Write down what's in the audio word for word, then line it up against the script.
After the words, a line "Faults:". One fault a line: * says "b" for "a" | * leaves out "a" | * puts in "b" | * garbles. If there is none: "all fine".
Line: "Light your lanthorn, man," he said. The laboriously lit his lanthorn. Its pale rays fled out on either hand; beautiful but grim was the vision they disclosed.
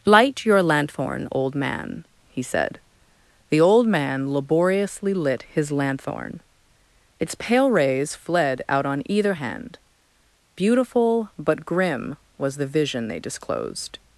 "Light your lanthorn, old man," he said. The old man laboriously lit his lanthorn. Its pale rays fled out on either hand; beautiful but grim was the vision they disclosed.
Faults:
* puts in "old"
* puts in "old man"